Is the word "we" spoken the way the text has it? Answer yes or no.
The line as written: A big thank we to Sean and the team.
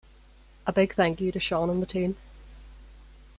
no